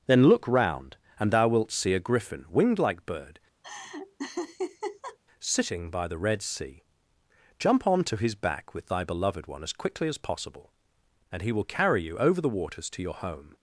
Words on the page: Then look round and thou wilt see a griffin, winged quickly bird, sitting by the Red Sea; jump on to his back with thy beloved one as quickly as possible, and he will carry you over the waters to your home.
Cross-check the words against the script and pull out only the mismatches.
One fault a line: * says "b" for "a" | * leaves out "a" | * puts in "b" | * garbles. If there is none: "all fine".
* says "like" for "quickly"